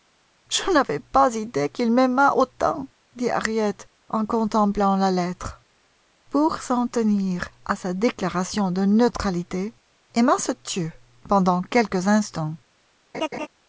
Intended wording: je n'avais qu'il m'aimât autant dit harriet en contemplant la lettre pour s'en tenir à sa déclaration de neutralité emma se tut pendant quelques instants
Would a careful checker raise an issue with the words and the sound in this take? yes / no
yes